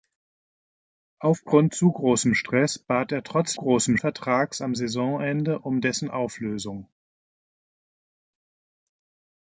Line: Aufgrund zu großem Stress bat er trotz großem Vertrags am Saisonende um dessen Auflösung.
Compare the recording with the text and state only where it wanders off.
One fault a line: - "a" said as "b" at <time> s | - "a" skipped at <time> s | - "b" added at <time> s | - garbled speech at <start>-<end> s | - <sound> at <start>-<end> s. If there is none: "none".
none